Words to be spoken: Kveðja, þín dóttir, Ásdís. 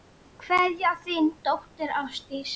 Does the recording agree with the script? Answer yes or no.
yes